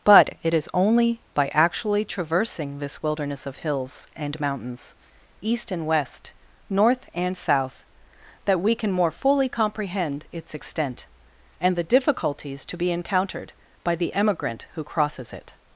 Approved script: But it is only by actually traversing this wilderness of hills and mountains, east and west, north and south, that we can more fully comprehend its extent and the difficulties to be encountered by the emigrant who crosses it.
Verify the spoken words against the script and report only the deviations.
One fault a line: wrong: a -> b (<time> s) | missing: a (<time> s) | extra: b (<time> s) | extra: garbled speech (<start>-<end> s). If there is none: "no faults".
no faults